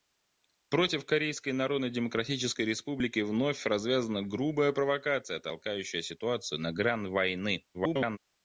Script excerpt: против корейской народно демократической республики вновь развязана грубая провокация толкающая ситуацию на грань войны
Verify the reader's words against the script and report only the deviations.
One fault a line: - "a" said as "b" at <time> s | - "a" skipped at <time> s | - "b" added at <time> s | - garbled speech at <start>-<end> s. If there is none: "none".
- garbled speech at 7.7-8.2 s